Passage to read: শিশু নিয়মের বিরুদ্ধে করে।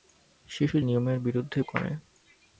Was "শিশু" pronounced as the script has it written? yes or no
yes